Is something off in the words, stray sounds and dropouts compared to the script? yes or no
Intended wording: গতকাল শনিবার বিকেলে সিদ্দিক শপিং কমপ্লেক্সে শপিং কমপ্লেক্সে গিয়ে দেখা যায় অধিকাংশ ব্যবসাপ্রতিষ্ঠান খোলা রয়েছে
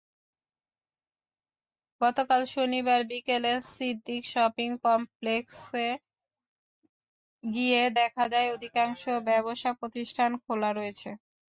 yes